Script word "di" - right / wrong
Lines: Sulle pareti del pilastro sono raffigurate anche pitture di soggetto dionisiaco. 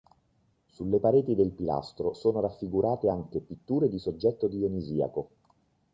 right